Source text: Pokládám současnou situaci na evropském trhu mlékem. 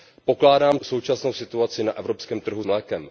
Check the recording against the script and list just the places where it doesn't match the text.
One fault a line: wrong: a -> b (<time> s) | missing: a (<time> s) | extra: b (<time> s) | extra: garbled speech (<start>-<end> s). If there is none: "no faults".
no faults